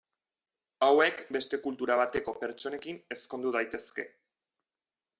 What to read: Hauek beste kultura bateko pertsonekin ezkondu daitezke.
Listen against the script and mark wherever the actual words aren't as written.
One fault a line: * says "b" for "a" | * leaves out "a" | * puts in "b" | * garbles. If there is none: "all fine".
all fine